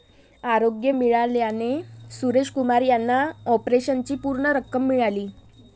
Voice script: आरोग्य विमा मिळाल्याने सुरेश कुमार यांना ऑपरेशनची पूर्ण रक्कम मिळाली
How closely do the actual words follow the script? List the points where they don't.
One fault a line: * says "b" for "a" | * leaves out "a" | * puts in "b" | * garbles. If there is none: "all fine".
* leaves out "विमा"